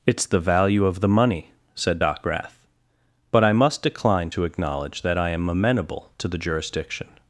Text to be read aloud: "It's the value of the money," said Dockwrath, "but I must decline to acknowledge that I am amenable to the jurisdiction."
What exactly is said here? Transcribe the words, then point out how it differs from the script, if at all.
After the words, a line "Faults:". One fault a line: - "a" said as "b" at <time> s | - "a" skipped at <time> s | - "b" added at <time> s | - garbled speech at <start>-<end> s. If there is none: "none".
"It's the value of the money," said Dockwrath, "but I must decline to acknowledge that I am amenable to the jurisdiction."
Faults:
none